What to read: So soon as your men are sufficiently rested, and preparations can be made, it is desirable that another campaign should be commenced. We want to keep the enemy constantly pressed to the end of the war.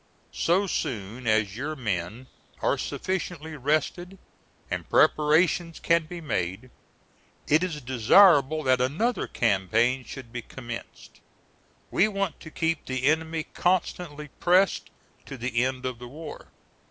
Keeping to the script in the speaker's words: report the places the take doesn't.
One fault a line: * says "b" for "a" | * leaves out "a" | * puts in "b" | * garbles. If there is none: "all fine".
all fine